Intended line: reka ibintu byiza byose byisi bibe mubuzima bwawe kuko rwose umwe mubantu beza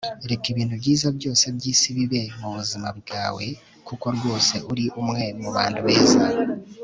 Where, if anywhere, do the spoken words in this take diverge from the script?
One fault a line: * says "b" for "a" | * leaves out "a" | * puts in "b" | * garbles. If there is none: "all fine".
* puts in "uri"